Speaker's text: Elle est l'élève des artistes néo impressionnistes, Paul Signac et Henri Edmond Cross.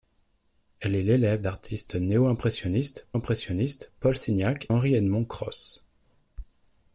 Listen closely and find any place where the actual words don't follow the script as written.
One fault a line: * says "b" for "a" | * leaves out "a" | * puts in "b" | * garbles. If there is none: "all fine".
* leaves out "des"
* puts in "impressionnistes"
* leaves out "et"